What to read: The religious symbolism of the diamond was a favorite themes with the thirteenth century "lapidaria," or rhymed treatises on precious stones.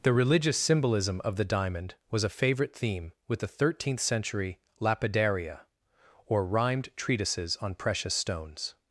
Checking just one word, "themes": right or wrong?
wrong